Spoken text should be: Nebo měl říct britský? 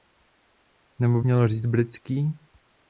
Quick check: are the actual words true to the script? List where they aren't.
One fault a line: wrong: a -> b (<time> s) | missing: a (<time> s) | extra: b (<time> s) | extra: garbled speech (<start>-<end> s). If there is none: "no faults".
no faults